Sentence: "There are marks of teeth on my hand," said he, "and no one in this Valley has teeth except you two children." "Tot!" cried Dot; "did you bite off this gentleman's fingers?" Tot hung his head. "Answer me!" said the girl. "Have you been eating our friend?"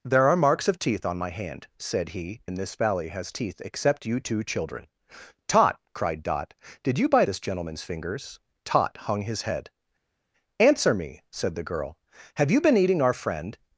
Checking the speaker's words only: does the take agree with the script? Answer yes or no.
no